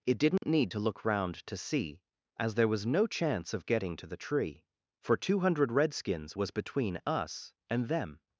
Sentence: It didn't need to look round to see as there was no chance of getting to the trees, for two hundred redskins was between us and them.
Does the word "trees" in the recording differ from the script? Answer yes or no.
yes